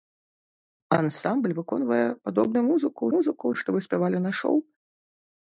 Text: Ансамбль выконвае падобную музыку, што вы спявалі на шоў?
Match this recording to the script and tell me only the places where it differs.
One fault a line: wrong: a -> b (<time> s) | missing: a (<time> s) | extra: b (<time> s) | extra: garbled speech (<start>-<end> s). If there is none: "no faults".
extra: музыку (3.2 s)